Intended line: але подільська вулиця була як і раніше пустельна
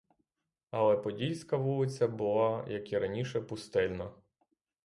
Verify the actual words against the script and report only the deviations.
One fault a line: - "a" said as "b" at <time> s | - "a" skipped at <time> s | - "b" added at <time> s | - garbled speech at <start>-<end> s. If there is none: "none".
none